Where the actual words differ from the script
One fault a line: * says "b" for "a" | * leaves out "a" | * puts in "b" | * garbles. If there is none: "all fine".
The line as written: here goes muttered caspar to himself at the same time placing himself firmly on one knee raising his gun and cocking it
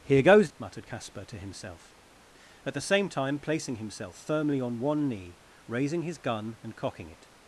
all fine